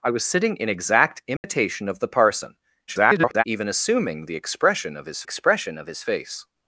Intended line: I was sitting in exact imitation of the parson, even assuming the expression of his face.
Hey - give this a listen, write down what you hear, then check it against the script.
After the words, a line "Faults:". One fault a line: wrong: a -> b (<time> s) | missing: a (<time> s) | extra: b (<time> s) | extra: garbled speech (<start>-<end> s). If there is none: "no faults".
I was sitting in exact imitation of the parson, [garbled] even assuming the expression of his expression of his face.
Faults:
extra: garbled speech (2.9-3.4 s)
extra: expression of his (5.2 s)